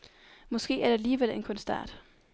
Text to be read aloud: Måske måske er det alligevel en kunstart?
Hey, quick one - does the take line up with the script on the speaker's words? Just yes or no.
no